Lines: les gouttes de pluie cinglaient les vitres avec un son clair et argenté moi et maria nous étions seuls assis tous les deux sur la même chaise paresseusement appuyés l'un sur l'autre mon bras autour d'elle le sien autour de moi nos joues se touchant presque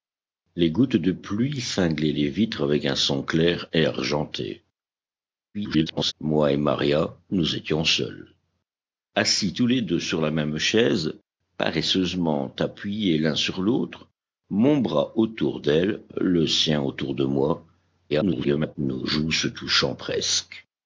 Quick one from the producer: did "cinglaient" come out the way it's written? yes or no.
yes